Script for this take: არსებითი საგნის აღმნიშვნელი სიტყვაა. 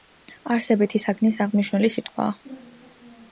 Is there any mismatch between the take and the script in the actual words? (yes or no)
no